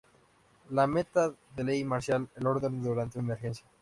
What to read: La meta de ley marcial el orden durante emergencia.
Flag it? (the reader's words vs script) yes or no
no